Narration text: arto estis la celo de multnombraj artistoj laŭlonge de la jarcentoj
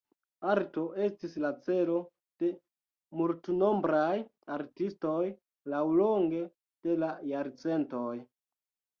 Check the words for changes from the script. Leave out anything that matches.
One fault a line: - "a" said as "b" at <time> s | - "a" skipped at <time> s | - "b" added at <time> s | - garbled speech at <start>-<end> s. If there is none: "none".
none